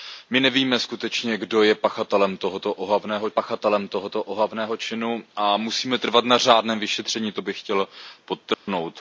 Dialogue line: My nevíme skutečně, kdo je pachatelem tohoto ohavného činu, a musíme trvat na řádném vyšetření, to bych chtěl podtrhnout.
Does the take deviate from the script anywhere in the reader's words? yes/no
yes